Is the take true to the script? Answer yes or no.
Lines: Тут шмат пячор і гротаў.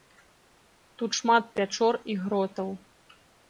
yes